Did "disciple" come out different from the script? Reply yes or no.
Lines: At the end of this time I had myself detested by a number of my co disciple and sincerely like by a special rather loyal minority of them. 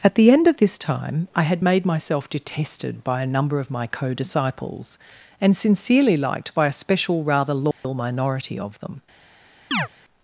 yes